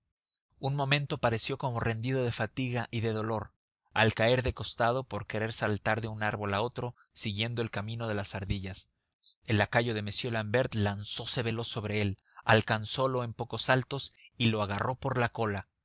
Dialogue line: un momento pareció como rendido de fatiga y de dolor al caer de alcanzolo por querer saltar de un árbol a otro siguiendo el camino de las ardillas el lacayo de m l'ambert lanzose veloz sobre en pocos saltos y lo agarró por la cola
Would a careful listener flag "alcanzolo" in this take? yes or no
yes